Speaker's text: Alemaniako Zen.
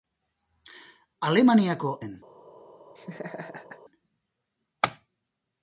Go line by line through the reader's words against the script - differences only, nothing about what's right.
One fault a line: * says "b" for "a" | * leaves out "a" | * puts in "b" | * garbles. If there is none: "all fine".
all fine